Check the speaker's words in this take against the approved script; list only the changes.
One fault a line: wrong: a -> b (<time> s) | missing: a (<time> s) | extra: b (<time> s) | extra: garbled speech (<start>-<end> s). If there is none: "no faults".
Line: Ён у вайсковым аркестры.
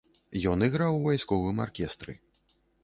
extra: іграў (0.7 s)